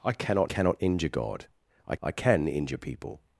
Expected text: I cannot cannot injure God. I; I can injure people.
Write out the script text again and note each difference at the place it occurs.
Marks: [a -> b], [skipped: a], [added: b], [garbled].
I cannot cannot injure God. I; I can injure people.